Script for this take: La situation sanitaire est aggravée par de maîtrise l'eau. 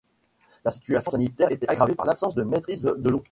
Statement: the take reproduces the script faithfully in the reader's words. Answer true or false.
false